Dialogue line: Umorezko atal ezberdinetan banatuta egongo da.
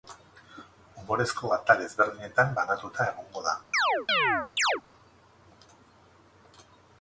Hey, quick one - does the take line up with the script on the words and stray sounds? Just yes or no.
no